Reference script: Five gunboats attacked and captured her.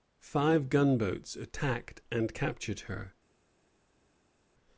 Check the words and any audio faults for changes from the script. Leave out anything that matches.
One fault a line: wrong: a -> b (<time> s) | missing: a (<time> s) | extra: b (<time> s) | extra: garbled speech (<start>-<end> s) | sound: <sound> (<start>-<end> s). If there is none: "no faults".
no faults